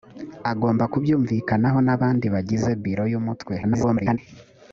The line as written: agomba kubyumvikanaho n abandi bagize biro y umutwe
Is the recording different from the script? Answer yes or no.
yes